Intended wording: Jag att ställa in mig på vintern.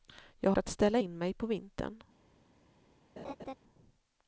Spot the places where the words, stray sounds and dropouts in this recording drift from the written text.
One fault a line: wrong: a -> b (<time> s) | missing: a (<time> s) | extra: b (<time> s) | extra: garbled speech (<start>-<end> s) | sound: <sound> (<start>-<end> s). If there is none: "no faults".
sound: laugh (3.2-3.6 s)